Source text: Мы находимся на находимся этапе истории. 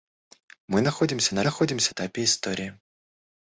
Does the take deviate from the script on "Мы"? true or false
false